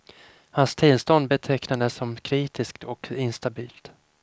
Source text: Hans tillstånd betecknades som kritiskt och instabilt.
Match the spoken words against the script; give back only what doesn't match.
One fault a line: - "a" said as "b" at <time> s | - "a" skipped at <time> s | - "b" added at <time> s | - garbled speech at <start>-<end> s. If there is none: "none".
none